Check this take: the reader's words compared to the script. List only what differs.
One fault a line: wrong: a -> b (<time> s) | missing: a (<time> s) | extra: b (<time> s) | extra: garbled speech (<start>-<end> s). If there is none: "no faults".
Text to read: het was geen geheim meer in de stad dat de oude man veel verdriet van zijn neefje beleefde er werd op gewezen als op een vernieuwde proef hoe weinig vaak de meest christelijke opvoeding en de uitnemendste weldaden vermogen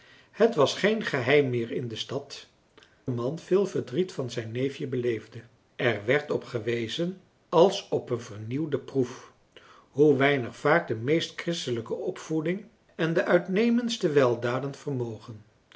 missing: dat de oude (2.5 s)